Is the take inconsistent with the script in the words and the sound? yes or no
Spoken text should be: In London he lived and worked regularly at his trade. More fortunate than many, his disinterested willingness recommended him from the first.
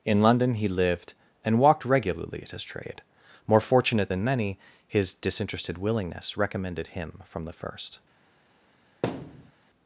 yes